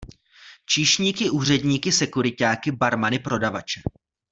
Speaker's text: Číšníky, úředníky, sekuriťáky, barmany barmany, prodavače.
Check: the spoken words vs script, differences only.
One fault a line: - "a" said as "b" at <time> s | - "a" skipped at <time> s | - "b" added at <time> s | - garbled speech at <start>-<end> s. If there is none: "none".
- "barmany" skipped at 3.2 s